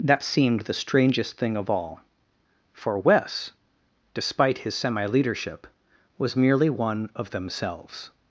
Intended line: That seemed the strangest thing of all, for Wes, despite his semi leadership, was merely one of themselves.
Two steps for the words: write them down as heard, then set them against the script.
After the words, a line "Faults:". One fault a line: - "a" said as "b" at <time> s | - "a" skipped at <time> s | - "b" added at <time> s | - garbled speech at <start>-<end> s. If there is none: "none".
That seemed the strangest thing of all, for Wes, despite his semi leadership, was merely one of themselves.
Faults:
none